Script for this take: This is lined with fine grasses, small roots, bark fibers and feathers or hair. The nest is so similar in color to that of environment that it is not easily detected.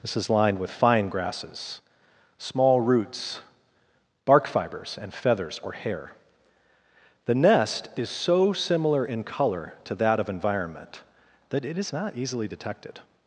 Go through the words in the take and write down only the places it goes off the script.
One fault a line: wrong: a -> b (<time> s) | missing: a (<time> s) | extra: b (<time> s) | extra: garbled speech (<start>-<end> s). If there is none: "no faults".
no faults